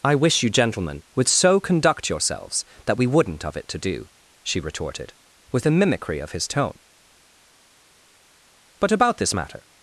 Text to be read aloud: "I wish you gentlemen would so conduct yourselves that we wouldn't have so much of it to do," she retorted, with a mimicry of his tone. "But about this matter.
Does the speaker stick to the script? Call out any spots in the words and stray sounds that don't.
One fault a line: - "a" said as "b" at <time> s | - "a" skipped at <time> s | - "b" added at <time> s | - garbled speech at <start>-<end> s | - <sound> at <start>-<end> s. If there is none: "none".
- "have so much" skipped at 3.5 s